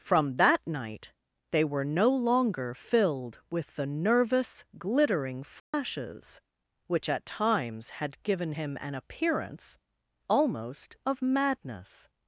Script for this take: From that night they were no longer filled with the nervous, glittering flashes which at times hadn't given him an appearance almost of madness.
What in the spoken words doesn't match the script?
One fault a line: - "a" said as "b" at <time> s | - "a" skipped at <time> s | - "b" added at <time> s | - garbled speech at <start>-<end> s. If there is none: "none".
- "hadn't" said as "had" at 7.9 s